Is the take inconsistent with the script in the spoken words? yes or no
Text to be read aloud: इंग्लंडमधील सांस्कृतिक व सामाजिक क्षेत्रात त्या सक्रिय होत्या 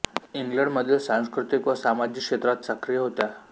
yes